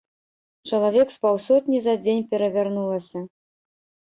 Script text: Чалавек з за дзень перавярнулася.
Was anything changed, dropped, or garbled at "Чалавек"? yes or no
no